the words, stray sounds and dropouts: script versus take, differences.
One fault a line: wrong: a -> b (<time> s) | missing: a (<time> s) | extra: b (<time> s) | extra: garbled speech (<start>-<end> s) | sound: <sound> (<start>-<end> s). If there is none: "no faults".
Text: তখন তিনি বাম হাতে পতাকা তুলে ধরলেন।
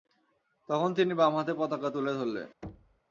sound: thud (2.6-3.0 s)